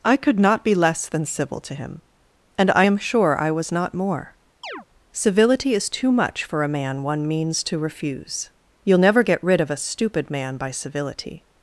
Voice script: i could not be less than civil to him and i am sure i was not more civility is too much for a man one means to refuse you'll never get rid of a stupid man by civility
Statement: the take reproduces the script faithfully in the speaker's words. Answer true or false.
true